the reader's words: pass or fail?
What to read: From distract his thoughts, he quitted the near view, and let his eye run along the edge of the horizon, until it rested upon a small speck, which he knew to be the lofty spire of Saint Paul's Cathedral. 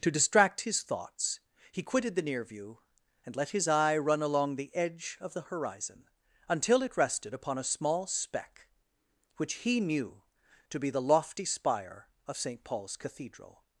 fail